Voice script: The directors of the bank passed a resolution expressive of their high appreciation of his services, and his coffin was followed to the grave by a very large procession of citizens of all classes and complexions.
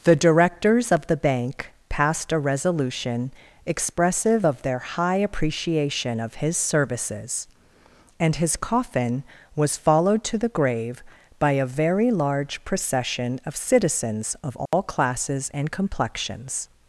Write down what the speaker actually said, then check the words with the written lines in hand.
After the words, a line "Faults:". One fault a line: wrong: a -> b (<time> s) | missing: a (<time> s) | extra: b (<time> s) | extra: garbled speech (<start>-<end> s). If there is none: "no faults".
The directors of the bank passed a resolution expressive of their high appreciation of his services, and his coffin was followed to the grave by a very large procession of citizens of all classes and complexions.
Faults:
no faults